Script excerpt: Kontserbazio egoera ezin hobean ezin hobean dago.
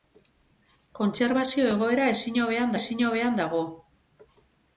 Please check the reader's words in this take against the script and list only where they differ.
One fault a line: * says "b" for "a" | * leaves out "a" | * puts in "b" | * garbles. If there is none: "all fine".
all fine